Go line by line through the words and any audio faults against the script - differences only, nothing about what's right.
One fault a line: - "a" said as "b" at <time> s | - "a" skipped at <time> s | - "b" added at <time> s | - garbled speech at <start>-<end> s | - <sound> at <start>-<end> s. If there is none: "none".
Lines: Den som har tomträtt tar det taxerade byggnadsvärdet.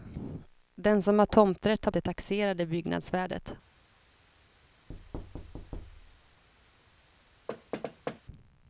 - thud at 4.9-6.4 s
- thud at 7.5-8.2 s